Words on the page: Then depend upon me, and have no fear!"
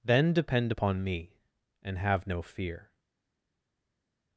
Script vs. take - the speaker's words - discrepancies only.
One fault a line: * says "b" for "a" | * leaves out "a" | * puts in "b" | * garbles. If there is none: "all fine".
all fine